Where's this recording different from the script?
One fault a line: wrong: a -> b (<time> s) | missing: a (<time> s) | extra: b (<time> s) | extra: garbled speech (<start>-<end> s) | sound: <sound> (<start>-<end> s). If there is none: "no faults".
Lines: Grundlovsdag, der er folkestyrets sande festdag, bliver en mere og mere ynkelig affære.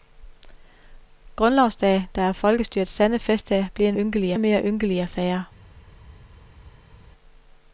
wrong: mere -> ynkelig (3.9 s)